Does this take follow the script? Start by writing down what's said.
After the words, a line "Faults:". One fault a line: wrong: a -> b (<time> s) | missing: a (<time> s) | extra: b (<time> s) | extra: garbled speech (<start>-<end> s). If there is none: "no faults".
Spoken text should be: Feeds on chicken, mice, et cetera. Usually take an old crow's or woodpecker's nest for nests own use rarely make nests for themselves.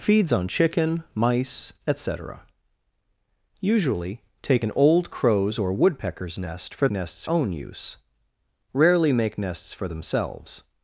Feeds on chicken, mice, et cetera. Usually take an old crow's or woodpecker's nest for nests own use rarely make nests for themselves.
Faults:
no faults